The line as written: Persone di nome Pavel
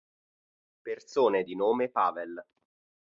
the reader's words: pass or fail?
pass